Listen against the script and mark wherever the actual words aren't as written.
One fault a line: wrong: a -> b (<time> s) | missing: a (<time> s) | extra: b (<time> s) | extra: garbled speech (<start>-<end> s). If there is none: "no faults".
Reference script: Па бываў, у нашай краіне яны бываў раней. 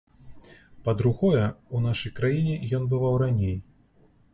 wrong: бываў -> другое (1.0 s)
wrong: яны -> ён (2.8 s)